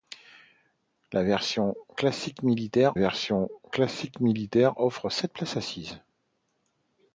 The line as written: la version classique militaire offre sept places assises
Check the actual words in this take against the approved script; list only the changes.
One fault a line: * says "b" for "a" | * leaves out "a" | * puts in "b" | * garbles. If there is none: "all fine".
* puts in "version classique militaire"